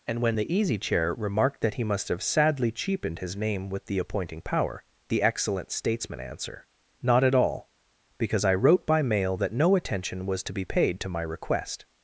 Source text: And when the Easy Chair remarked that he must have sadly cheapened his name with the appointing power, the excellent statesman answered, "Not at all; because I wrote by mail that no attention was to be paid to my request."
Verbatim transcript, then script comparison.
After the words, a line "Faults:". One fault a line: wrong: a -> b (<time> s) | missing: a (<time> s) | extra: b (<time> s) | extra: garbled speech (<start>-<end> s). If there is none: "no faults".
And when the Easy Chair remarked that he must have sadly cheapened his name with the appointing power, the excellent statesman answer, "Not at all; because I wrote by mail that no attention was to be paid to my request."
Faults:
wrong: answered -> answer (6.2 s)